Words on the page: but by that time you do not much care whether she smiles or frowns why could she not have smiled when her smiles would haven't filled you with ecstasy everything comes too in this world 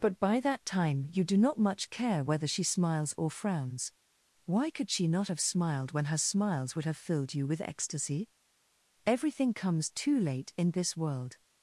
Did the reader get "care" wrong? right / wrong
right